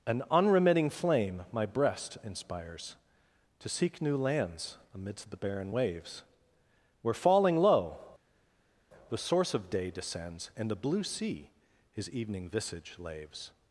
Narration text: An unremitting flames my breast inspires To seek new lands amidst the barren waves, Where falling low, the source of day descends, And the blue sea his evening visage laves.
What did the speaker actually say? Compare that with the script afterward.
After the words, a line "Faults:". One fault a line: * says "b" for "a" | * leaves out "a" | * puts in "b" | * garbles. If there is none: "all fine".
An unremitting flame my breast inspires To seek new lands amidst the barren waves, Where falling low, the source of day descends, And the blue sea his evening visage laves.
Faults:
* says "flame" for "flames"